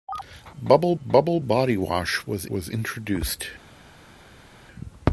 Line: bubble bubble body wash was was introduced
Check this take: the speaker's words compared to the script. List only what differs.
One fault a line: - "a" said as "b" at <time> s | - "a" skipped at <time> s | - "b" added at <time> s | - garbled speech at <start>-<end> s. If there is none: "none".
none